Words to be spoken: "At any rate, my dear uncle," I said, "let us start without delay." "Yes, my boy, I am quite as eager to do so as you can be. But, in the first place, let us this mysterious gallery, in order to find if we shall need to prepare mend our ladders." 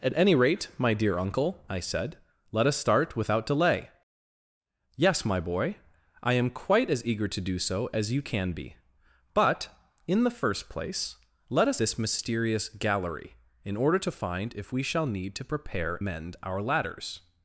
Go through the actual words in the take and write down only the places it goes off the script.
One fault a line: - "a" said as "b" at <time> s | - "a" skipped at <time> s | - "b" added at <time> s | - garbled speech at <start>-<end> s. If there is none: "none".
none